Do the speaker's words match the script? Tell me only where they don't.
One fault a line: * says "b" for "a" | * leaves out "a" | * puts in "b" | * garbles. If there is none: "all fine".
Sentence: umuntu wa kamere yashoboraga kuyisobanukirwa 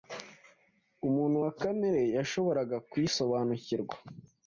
all fine